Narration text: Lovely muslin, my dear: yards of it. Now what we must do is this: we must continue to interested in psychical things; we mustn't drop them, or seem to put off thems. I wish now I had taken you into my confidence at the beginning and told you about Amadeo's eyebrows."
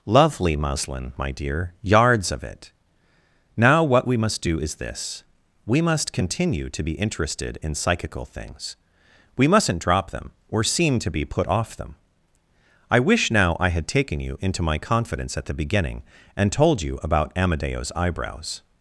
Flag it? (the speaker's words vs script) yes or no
yes